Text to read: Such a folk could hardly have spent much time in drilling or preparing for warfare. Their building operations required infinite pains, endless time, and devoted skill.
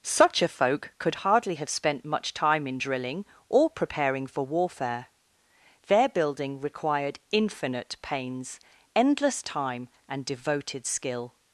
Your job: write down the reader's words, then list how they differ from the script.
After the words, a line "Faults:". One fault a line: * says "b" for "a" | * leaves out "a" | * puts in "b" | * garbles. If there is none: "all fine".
Such a folk could hardly have spent much time in drilling or preparing for warfare. Their building required infinite pains, endless time, and devoted skill.
Faults:
* leaves out "operations"